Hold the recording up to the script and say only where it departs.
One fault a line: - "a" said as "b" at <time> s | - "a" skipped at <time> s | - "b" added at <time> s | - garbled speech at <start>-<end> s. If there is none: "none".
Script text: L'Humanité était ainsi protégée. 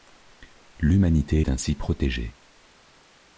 - "était" said as "est" at 1.4 s